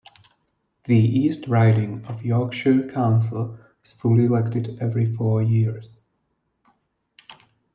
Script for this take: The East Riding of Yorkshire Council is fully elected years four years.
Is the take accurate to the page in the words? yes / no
no